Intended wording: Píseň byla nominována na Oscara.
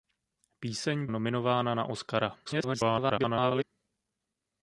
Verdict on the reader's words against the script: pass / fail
fail